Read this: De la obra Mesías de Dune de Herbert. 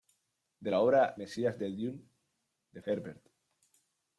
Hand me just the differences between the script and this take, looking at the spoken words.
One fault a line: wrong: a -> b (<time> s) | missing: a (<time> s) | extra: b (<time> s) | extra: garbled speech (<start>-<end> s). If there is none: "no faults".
no faults